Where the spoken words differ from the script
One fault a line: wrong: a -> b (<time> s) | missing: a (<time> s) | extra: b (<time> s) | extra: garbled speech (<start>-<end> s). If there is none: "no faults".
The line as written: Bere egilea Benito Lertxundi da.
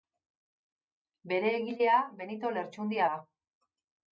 no faults